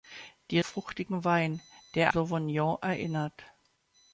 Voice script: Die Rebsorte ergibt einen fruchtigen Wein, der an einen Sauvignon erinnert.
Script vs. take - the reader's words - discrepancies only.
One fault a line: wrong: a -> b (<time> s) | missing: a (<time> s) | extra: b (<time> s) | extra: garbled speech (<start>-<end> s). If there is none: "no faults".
missing: Rebsorte ergibt einen (0.6 s)
missing: an einen (2.1 s)